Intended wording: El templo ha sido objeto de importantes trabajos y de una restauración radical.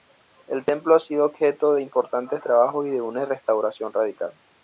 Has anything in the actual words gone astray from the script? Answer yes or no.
no